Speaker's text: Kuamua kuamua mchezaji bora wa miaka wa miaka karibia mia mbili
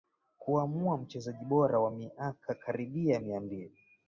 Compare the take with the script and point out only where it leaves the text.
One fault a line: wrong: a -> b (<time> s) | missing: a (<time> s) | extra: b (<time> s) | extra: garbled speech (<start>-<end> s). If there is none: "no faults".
missing: kuamua (1.0 s)
missing: wa miaka (2.5 s)